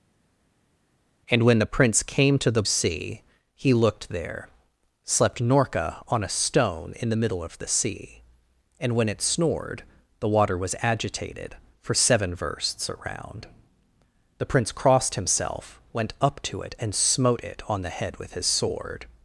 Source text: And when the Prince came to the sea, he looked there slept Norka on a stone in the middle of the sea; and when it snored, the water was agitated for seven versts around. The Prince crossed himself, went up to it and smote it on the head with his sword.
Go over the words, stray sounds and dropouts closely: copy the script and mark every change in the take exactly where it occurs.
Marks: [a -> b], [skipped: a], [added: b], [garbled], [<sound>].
And when the Prince came to the sea, he looked there slept Norka on a stone in the middle of the sea; and when it snored, the water was agitated for seven versts around. The Prince crossed himself, went up to it and smote it on the head with his sword.